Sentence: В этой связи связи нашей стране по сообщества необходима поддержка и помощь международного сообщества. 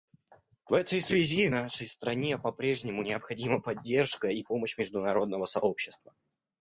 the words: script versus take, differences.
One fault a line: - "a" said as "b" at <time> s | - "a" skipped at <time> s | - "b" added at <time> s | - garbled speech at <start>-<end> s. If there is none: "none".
- "связи" skipped at 1.5 s
- "сообщества" said as "прежнему" at 2.5 s